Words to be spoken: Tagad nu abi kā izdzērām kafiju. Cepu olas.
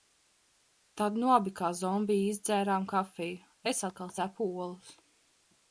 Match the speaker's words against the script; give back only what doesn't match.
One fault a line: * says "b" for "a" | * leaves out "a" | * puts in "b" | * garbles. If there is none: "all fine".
* says "Tad" for "Tagad"
* puts in "zombiji"
* puts in "Es atkal"